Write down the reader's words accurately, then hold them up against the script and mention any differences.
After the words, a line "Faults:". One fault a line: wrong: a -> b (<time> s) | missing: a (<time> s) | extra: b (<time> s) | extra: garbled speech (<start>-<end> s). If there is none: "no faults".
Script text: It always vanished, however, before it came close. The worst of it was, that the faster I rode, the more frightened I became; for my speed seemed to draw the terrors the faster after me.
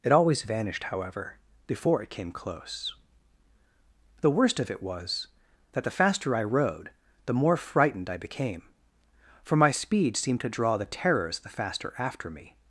It always vanished, however, before it came close. The worst of it was, that the faster I rode, the more frightened I became; for my speed seemed to draw the terrors the faster after me.
Faults:
no faults